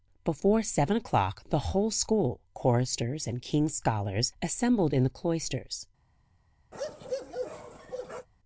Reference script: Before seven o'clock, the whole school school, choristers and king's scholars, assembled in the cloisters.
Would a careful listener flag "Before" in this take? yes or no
no